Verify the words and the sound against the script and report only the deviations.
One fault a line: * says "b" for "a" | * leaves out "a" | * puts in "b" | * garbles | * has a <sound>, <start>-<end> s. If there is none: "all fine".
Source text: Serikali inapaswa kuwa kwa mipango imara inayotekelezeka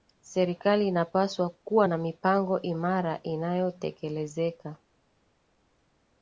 * says "na" for "kwa"